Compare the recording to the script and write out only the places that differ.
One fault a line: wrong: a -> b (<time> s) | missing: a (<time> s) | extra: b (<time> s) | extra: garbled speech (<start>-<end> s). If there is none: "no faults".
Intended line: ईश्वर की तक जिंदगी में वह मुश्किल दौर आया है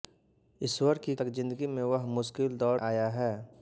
no faults